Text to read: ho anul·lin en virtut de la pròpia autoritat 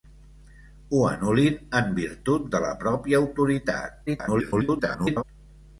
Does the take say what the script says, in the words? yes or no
no